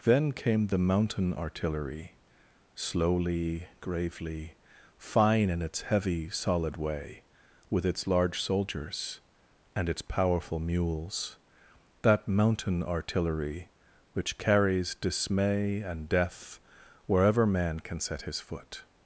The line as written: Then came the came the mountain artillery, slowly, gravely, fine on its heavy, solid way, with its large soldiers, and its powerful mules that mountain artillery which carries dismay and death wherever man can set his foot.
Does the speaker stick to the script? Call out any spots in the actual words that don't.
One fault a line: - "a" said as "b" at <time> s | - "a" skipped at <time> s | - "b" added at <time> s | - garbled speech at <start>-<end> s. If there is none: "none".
- "came the" skipped at 0.8 s
- "on" said as "in" at 5.5 s